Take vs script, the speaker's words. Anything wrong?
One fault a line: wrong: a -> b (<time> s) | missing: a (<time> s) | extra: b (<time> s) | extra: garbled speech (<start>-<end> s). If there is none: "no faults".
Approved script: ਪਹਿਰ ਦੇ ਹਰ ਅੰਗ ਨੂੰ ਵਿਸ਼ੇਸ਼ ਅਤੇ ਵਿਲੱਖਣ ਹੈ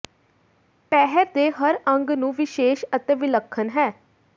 no faults